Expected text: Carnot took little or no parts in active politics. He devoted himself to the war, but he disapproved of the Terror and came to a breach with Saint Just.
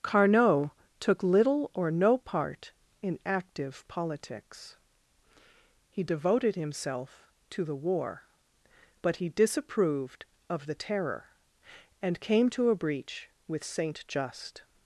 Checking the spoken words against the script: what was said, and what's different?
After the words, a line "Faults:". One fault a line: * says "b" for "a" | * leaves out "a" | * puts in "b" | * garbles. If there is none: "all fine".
Carnot took little or no part in active politics. He devoted himself to the war, but he disapproved of the Terror and came to a breach with Saint Just.
Faults:
* says "part" for "parts"